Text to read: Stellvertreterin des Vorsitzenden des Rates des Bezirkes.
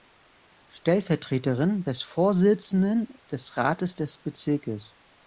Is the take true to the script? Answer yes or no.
yes